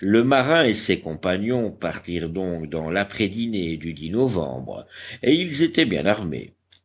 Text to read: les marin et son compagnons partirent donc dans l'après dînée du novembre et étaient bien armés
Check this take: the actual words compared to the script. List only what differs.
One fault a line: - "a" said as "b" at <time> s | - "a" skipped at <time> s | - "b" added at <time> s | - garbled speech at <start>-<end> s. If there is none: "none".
- "les" said as "le" at 0.0 s
- "son" said as "ses" at 0.7 s
- "ils" added at 5.3 s